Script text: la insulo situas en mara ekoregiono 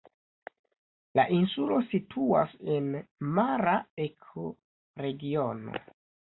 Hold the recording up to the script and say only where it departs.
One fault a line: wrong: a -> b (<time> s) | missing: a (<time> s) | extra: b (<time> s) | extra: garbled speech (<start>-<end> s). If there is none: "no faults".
no faults